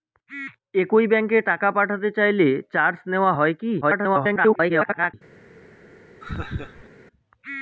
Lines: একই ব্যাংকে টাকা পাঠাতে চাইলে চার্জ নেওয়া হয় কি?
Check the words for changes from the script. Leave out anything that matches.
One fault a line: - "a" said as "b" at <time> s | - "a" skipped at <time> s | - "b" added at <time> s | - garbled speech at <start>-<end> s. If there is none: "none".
- garbled speech at 3.8-5.1 s